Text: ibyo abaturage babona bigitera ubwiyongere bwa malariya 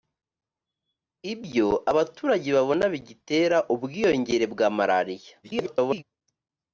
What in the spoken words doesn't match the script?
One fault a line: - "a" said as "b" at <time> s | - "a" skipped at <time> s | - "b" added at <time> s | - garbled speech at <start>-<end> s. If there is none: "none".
- garbled speech at 5.4-6.0 s